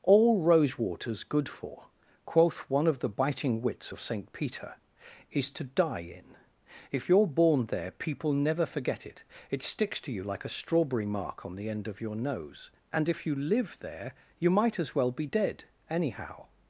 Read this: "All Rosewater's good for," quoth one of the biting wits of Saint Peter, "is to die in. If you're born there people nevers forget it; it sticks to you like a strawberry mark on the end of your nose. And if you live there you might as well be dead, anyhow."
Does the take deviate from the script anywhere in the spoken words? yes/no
yes